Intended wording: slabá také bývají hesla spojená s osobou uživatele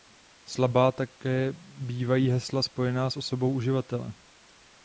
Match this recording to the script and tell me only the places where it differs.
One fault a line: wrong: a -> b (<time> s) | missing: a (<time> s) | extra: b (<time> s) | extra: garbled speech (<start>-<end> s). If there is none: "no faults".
no faults